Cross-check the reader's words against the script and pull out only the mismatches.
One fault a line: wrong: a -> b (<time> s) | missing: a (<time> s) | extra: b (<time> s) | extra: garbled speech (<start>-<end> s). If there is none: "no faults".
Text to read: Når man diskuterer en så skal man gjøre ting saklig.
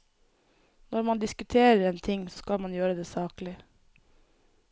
extra: ting (2.0 s)
wrong: ting -> det (2.9 s)